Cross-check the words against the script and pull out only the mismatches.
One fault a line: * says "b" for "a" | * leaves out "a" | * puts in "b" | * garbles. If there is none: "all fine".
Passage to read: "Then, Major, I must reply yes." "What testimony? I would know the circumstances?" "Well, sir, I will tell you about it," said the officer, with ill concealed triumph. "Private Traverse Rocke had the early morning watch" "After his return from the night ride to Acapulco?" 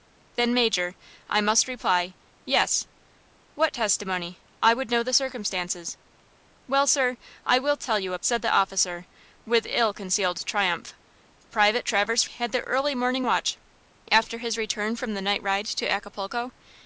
* leaves out "about it"
* leaves out "Rocke"